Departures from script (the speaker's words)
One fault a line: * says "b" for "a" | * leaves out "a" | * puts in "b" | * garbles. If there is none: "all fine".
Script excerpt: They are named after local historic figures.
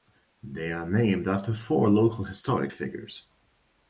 * puts in "four"